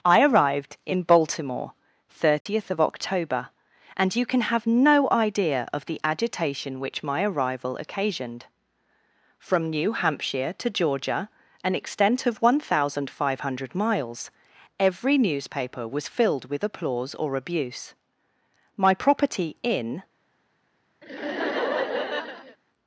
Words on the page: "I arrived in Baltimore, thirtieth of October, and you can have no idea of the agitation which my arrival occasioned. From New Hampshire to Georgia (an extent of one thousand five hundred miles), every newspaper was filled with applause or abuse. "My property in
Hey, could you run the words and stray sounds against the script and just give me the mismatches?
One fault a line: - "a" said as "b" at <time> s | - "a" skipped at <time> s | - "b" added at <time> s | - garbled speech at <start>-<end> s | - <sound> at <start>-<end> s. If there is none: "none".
- dropout at 2.4-2.5 s
- laugh at 21.0-22.6 s